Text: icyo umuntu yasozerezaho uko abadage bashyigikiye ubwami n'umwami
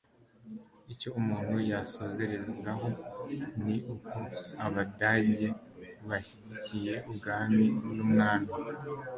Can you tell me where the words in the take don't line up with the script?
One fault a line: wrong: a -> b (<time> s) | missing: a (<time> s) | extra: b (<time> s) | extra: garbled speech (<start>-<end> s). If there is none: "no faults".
extra: ni (3.6 s)